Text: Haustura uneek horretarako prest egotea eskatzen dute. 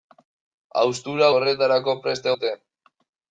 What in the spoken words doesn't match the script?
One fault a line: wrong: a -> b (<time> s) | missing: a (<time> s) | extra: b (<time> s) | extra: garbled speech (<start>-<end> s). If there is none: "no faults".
missing: uneek (1.3 s)
missing: egotea eskatzen (2.3 s)